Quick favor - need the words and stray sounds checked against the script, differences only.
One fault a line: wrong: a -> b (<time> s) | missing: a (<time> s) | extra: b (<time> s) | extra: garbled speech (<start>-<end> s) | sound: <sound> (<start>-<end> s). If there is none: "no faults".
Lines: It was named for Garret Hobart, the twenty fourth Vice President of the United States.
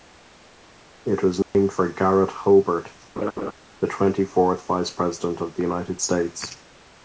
sound: dropout (1.4-1.5 s)
sound: laugh (3.2-3.5 s)